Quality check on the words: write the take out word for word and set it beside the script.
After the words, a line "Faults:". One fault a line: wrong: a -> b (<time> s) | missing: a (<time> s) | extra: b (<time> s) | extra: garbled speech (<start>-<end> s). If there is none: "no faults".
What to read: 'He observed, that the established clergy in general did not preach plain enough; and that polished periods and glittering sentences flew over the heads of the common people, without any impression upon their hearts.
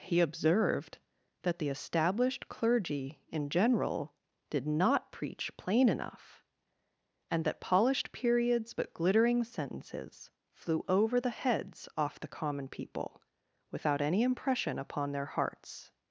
'He observed, that the established clergy in general did not preach plain enough; and that polished periods but glittering sentences flew over the heads off the common people, without any impression upon their hearts.
Faults:
wrong: and -> but (8.7 s)
wrong: of -> off (12.0 s)